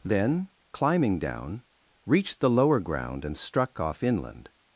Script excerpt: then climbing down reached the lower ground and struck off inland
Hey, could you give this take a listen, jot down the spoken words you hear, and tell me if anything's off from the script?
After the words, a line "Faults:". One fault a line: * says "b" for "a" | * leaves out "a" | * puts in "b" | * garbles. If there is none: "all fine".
then climbing down reached the lower ground and struck off inland
Faults:
all fine